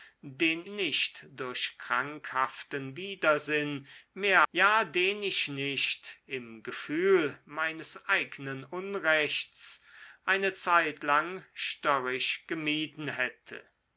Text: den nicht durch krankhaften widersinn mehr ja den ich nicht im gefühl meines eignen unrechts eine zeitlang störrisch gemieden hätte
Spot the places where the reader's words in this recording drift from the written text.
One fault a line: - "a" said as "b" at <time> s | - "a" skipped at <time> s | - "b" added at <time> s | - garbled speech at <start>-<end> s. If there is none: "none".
none